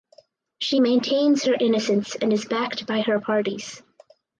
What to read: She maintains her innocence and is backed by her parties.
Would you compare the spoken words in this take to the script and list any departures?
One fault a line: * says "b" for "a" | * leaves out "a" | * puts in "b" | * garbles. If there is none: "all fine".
all fine